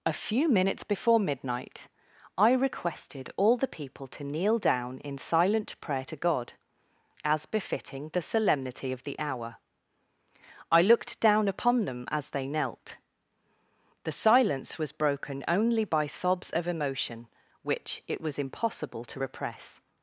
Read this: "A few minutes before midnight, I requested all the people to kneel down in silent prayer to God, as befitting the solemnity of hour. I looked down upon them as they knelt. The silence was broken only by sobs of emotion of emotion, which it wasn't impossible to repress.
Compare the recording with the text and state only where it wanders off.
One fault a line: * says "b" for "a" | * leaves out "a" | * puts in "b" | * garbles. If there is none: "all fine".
* puts in "the"
* leaves out "of emotion"
* says "was" for "wasn't"